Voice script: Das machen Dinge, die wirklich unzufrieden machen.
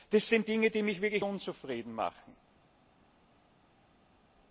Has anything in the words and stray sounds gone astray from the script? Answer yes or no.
yes